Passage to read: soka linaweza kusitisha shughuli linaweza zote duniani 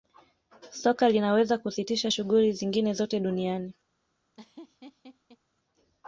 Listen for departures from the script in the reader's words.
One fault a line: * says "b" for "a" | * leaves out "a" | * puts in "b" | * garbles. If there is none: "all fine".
* says "zingine" for "linaweza"